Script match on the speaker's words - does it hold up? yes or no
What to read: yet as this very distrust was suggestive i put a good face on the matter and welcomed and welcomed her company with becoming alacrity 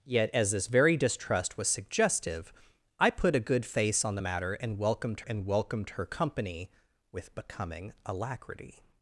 yes